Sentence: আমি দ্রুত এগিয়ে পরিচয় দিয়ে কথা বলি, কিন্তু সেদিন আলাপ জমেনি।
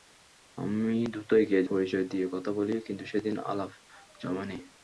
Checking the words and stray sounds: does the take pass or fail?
pass